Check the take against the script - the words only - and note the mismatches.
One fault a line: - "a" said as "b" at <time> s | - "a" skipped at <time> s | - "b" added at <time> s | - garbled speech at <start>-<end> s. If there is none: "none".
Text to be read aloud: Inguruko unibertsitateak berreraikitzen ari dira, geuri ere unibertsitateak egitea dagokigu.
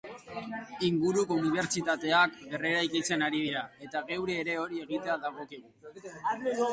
- "eta" added at 3.9 s
- "unibertsitateak" said as "hori" at 4.7 s